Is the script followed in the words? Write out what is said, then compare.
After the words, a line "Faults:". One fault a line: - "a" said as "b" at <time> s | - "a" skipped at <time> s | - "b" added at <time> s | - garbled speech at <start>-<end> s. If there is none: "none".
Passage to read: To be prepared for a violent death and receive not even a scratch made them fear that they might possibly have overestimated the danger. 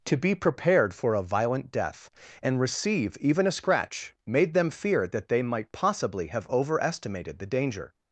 To be prepared for a violent death and receive even a scratch made them fear that they might possibly have overestimated the danger.
Faults:
- "not" skipped at 3.2 s